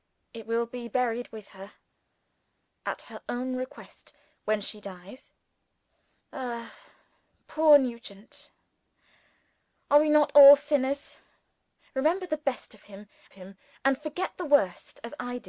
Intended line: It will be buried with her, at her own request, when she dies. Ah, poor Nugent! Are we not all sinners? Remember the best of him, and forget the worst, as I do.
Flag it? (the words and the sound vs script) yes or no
yes